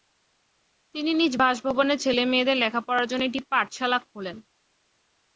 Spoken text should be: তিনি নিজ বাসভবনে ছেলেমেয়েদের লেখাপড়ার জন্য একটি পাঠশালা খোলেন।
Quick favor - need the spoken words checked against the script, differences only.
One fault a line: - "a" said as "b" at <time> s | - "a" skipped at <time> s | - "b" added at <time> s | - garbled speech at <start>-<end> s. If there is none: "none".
none